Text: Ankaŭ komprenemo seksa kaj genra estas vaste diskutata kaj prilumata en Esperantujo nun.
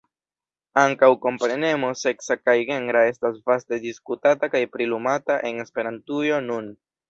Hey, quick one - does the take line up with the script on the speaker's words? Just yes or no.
yes